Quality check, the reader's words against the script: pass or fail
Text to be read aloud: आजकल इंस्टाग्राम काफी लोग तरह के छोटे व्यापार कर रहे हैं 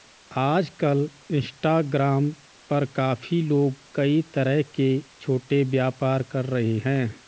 fail